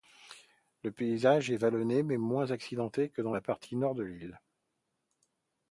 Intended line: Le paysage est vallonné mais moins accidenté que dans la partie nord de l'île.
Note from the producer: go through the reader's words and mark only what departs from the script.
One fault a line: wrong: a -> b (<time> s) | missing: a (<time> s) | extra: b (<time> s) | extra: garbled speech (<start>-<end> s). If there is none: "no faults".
no faults